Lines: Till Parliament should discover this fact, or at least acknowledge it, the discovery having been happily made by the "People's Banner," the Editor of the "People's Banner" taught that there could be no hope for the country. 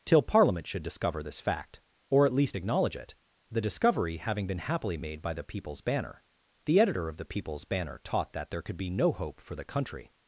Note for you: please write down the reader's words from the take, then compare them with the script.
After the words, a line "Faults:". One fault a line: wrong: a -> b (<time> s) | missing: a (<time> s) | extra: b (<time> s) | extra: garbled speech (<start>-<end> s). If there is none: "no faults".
Till Parliament should discover this fact, or at least acknowledge it, the discovery having been happily made by the "People's Banner," the Editor of the "People's Banner" taught that there could be no hope for the country.
Faults:
no faults